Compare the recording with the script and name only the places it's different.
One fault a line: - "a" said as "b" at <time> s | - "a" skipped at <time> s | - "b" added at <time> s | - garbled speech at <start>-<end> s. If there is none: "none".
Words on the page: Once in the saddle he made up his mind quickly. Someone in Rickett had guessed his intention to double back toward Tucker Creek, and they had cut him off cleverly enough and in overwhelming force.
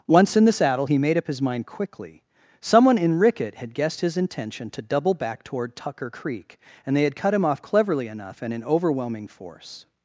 none